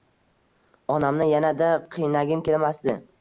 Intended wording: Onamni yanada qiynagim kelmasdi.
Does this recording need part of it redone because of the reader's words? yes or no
no